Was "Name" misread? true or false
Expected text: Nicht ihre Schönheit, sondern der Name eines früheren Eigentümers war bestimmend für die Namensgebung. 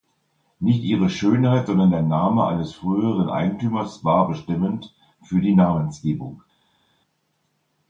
false